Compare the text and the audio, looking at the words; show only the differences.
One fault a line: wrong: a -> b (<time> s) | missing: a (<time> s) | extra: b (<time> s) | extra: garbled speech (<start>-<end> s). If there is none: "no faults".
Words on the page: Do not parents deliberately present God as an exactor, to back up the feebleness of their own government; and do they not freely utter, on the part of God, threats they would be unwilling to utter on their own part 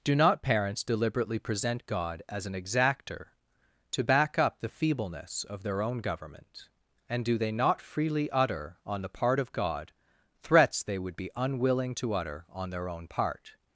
no faults